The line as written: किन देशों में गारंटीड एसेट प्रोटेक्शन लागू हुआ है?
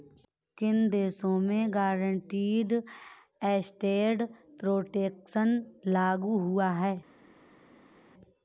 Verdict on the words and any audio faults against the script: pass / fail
pass